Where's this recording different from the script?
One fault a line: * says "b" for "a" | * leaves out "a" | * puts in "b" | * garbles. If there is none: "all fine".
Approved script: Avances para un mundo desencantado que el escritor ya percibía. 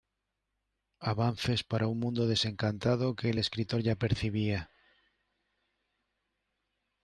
all fine